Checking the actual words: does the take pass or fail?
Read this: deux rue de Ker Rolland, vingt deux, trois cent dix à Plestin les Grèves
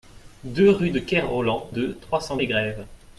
fail